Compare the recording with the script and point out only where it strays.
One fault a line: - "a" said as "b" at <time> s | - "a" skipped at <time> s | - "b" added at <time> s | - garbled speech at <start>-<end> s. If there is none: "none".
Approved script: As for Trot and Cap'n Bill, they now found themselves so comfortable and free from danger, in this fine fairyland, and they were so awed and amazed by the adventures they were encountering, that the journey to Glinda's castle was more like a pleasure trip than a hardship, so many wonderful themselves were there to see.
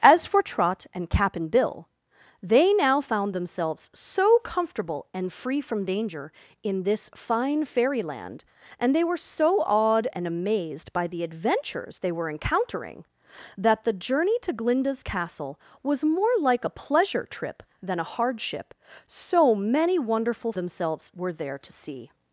none